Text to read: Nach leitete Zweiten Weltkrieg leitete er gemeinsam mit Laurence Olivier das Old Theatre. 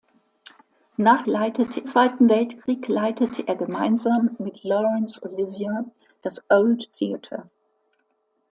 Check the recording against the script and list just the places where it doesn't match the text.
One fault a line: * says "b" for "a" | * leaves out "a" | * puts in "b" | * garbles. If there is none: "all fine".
all fine